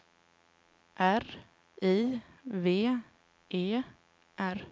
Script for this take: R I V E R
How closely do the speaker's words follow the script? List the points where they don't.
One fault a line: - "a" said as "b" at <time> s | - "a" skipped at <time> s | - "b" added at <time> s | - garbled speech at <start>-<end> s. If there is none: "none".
none